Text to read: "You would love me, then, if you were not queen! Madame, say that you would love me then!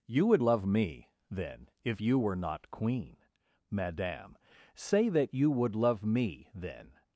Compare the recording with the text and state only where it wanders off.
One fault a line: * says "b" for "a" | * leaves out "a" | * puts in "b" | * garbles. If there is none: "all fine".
all fine